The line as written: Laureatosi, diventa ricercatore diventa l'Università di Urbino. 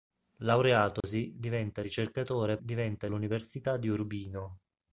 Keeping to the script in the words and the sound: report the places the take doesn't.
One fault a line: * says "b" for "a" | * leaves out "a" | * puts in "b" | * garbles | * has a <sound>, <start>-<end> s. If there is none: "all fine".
* has a dropout, 1.0-1.0 s